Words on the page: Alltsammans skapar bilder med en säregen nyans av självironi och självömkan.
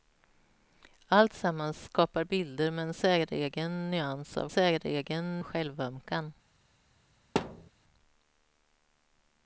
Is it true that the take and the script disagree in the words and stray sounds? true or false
true